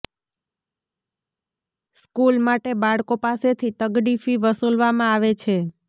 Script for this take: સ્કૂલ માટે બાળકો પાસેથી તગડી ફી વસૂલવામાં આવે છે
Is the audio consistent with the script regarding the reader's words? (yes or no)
yes